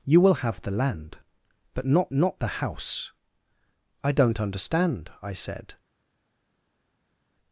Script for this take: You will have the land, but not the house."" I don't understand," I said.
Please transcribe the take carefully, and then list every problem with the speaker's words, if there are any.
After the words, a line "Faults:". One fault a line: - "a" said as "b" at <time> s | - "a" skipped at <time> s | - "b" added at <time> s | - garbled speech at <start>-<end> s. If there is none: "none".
You will have the land, but not not the house."" I don't understand," I said.
Faults:
- "not" added at 2.1 s